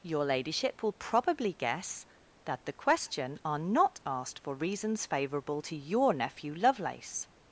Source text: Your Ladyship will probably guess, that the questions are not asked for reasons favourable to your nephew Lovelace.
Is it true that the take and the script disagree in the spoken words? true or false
true